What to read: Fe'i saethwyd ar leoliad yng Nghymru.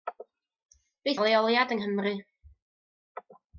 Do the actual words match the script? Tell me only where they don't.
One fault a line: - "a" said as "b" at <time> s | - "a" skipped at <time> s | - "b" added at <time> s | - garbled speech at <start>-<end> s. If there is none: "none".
- "saethwyd" skipped at 1.1 s